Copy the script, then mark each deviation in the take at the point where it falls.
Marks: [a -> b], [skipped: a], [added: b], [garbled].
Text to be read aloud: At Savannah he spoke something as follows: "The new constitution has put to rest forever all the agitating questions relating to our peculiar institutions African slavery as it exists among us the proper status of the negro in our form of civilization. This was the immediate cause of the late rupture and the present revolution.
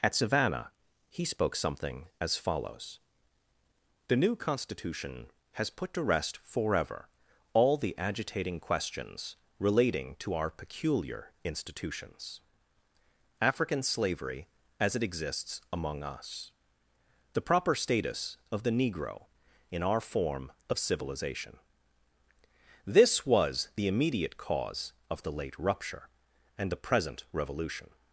At Savannah he spoke something as follows: "The new constitution has put to rest forever all the agitating questions relating to our peculiar institutions African slavery as it exists among us the proper status of the negro in our form of civilization. This was the immediate cause of the late rupture and the present revolution.